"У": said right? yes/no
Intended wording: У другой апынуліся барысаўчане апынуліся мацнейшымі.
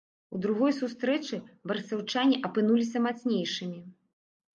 yes